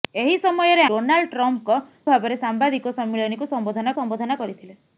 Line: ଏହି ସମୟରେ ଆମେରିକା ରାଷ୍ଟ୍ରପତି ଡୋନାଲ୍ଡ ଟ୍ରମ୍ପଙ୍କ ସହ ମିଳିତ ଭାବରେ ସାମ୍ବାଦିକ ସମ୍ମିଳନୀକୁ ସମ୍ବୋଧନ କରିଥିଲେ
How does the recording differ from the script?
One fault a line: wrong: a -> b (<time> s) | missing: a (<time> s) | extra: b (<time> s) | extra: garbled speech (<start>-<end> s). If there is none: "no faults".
missing: ଆମେରିକା ରାଷ୍ଟ୍ରପତି (0.8 s)
missing: ସହ ମିଳିତ (1.8 s)
extra: ସମ୍ବୋଧନ (4.0 s)